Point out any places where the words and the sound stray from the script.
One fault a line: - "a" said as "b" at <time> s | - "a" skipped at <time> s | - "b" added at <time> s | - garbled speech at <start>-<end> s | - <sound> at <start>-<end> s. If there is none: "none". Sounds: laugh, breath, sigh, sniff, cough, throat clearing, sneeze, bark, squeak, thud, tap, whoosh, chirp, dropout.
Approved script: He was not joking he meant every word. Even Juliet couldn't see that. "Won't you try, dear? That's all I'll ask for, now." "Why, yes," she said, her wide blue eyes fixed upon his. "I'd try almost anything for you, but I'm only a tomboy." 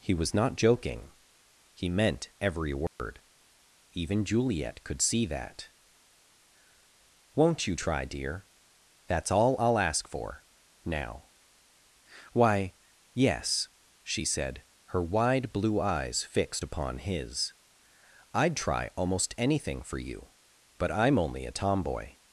- dropout at 2.9-3.0 s
- "couldn't" said as "could" at 4.8 s